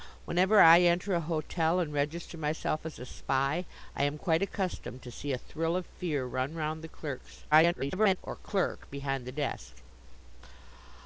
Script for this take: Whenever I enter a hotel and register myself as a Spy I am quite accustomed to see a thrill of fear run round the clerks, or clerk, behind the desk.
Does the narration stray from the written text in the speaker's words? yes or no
yes